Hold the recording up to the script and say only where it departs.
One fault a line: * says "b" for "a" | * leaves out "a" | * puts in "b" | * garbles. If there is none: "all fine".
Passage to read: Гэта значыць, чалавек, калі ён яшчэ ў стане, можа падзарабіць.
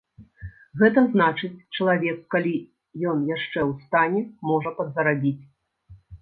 all fine